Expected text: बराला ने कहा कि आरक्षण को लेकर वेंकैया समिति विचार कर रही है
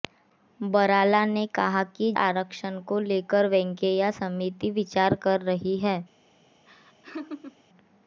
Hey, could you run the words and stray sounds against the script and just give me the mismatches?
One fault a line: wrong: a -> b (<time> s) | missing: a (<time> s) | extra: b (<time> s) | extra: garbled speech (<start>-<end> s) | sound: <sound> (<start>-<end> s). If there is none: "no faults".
sound: laugh (6.7-7.6 s)